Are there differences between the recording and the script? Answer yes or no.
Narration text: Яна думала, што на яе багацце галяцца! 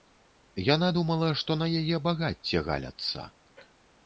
no